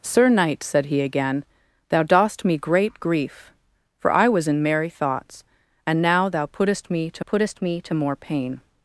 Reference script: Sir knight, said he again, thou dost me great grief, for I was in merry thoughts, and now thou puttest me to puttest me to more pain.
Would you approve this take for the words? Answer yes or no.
yes